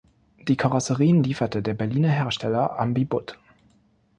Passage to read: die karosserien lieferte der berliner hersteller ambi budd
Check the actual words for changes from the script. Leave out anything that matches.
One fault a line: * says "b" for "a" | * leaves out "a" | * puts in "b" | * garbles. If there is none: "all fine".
all fine